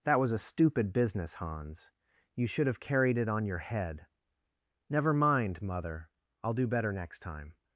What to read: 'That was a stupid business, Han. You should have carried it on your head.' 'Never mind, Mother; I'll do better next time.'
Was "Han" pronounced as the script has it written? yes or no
no